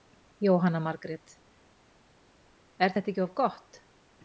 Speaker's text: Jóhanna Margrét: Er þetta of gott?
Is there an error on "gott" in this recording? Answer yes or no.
no